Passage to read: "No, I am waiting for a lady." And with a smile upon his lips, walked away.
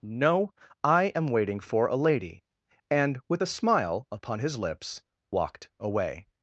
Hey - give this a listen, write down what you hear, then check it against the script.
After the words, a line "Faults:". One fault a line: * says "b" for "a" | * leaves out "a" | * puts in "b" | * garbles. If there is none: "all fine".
"No, I am waiting for a lady." And with a smile upon his lips, walked away.
Faults:
all fine